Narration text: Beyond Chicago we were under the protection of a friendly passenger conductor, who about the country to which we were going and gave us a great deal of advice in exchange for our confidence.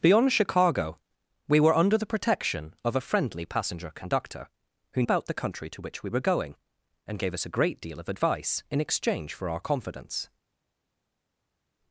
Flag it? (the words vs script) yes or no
no